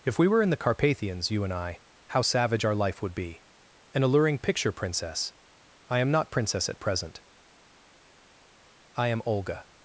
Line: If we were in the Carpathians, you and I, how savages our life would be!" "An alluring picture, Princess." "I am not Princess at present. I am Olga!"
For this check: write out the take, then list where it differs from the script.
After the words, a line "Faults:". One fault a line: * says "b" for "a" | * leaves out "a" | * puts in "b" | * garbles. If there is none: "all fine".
If we were in the Carpathians, you and I, how savage our life would be!" "An alluring picture, Princess." "I am not Princess at present. I am Olga!"
Faults:
* says "savage" for "savages"